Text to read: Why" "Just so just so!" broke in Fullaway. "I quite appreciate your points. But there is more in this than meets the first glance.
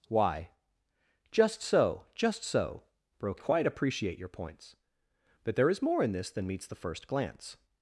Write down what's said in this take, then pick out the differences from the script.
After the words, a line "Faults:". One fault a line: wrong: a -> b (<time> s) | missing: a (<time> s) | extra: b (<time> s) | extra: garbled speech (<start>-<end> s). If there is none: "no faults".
Why" "Just so just so!" broke quite appreciate your points. But there is more in this than meets the first glance.
Faults:
missing: in Fullaway I (3.4 s)